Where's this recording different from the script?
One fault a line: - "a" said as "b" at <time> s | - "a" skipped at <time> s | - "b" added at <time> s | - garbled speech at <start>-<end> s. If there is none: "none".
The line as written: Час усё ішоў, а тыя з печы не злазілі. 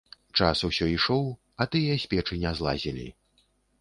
none